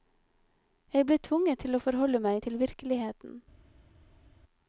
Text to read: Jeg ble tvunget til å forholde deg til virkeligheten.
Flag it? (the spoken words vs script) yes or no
yes